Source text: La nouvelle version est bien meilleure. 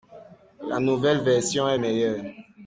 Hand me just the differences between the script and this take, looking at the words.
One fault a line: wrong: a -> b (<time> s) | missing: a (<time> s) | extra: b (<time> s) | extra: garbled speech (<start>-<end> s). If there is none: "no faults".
missing: bien (1.8 s)